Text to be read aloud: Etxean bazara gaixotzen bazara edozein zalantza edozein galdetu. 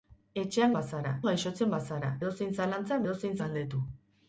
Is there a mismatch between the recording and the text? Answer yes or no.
no